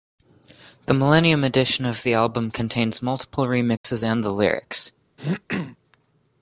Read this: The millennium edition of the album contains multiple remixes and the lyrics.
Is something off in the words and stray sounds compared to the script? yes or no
yes